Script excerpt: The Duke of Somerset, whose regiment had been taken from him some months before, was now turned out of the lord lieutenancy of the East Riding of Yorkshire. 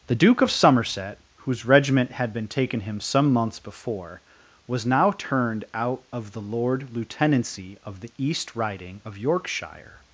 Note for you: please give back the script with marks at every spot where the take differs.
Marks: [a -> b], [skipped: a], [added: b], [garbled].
The Duke of Somerset, whose regiment had been taken [skipped: from] him some months before, was now turned out of the lord lieutenancy of the East Riding of Yorkshire.